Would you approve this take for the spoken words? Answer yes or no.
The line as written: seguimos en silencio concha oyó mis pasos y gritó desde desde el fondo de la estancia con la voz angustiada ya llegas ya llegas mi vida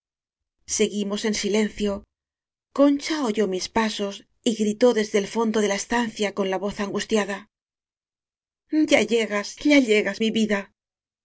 no